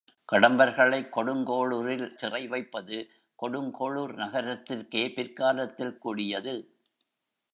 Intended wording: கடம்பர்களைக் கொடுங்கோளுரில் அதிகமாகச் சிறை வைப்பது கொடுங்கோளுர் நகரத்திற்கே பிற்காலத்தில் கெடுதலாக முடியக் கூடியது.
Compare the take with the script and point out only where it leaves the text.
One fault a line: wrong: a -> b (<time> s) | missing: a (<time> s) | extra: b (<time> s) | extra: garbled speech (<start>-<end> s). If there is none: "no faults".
missing: அதிகமாகச் (2.1 s)
missing: கெடுதலாக முடியக் (6.0 s)